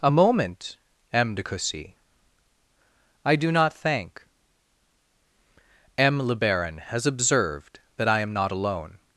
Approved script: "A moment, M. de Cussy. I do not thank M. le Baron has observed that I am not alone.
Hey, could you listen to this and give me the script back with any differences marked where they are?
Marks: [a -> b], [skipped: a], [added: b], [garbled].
"A moment, M. de Cussy. I do not thank M. le Baron has observed that I am not alone.